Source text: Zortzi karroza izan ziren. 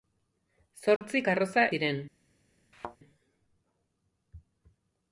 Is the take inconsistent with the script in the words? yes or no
yes